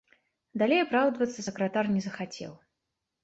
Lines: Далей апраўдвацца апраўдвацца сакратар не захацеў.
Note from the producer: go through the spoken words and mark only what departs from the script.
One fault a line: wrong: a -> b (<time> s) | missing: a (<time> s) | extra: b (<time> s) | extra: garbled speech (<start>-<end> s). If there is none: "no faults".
missing: апраўдвацца (1.4 s)